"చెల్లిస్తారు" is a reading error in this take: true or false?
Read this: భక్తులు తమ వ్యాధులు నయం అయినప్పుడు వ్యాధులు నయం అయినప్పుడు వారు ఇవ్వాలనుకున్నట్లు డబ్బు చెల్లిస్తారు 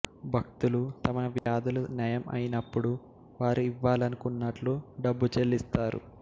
false